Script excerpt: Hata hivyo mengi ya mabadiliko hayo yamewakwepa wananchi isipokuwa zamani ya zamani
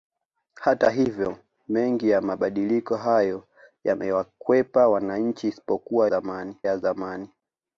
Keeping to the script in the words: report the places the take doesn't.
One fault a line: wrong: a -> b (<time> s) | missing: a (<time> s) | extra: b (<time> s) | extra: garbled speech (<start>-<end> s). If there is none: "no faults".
no faults